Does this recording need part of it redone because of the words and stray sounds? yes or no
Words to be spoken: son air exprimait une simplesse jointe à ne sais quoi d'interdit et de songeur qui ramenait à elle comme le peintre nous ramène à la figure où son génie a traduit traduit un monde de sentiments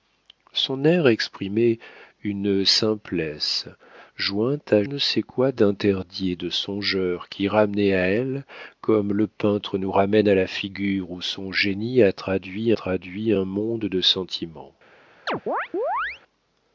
yes